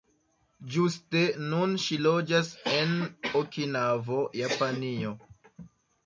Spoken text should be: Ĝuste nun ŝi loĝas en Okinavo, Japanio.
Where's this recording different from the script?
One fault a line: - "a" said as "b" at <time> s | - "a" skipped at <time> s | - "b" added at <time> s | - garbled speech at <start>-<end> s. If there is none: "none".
none